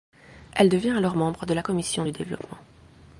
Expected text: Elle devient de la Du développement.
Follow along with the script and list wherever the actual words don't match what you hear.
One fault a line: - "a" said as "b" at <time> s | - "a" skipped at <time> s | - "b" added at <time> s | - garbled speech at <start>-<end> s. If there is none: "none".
- "alors membre" added at 1.0 s
- "Commission" added at 1.6 s